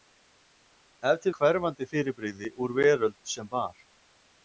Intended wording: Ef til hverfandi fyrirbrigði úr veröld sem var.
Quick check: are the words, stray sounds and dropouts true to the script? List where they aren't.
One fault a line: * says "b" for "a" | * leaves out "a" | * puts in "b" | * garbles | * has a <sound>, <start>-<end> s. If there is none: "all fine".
all fine